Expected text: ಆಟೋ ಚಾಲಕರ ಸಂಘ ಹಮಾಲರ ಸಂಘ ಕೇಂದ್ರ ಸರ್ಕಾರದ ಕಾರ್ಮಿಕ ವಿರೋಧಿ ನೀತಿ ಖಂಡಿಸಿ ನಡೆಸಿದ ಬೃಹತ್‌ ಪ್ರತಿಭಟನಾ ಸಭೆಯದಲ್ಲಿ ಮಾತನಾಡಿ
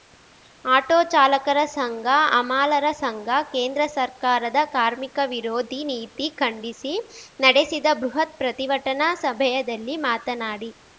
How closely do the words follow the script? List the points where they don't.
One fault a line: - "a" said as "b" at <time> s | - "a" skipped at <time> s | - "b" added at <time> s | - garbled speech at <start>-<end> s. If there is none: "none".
none